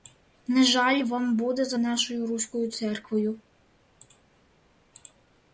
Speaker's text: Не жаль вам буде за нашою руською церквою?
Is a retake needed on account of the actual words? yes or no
no